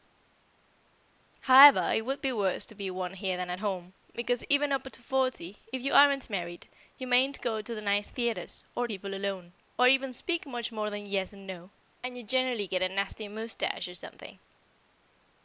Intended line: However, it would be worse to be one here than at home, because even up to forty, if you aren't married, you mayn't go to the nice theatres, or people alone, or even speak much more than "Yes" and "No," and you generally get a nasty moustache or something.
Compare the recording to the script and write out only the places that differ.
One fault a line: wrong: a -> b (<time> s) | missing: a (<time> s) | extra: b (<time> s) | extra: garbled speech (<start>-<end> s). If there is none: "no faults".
no faults